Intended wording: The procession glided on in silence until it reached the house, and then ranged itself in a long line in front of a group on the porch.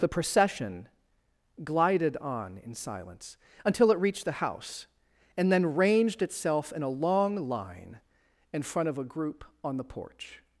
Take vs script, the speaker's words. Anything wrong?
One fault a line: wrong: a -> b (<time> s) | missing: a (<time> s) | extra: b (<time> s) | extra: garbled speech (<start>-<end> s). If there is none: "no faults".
no faults